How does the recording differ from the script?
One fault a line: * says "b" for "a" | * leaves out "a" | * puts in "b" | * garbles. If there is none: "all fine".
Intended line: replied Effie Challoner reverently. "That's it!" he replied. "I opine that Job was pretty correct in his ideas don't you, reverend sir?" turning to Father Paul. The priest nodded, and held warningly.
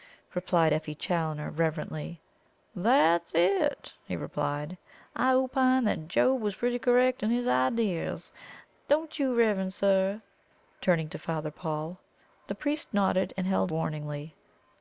all fine